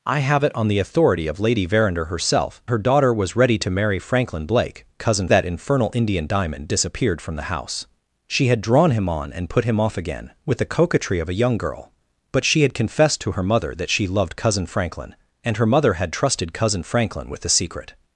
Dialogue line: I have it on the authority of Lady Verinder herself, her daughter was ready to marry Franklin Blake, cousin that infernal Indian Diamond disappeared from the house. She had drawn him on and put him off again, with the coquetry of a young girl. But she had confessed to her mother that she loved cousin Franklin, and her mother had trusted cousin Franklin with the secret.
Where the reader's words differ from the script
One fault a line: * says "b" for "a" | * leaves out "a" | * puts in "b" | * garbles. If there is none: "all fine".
all fine